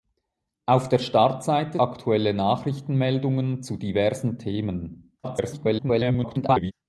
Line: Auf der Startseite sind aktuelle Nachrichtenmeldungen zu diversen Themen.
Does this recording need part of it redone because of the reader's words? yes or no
yes